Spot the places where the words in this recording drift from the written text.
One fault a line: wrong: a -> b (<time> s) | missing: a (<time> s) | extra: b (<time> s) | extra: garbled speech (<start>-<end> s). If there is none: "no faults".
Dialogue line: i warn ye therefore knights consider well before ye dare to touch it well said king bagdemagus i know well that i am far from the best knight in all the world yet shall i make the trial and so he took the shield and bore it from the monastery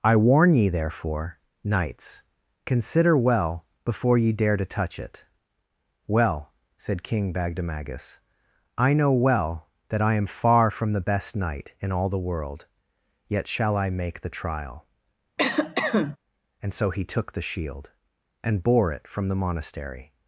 no faults